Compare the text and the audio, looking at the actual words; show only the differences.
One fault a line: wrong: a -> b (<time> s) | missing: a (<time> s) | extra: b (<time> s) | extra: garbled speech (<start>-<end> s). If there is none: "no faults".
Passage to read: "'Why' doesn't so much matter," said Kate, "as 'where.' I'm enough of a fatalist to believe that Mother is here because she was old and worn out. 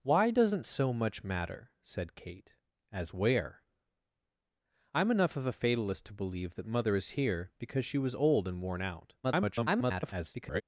extra: garbled speech (9.2-10.6 s)